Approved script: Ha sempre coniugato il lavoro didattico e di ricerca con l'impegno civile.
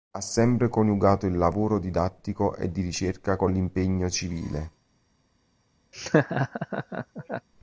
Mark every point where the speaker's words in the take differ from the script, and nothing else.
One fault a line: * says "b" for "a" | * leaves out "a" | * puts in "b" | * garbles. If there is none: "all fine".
all fine